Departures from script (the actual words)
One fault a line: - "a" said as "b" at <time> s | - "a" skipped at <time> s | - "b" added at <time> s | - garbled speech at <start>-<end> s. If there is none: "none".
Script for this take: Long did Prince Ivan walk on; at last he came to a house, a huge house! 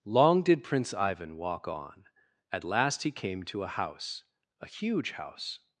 none